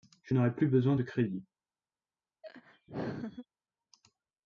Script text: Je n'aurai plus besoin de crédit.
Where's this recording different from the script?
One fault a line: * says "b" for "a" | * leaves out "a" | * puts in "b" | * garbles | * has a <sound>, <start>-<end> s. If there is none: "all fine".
* has a laugh, 2.4-3.5 s